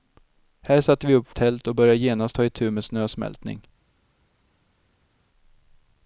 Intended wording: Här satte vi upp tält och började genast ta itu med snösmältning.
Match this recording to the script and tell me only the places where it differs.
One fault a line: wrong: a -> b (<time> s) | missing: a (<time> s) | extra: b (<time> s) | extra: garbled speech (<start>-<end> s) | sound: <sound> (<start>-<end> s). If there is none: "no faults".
no faults